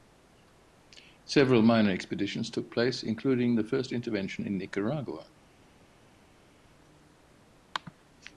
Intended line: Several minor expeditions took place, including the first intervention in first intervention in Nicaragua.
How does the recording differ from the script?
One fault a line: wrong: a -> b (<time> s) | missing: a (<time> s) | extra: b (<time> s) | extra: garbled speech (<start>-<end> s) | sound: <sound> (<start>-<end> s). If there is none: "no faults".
missing: first intervention in (4.6 s)